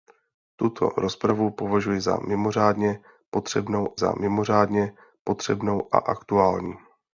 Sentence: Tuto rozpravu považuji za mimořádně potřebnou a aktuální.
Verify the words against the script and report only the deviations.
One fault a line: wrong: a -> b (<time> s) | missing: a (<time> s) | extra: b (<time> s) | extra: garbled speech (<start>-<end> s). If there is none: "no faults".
extra: za mimořádně potřebnou (4.0 s)